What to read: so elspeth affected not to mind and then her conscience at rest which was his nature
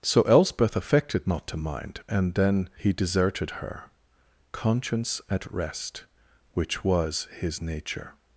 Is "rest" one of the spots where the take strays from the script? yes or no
no